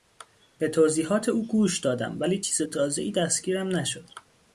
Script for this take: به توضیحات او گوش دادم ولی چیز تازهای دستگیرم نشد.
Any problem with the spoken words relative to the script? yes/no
no